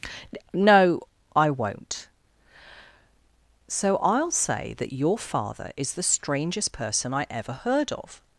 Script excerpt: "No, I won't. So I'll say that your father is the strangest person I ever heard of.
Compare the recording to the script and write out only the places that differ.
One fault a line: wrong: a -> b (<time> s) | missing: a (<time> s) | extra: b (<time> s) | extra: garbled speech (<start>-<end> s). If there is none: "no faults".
no faults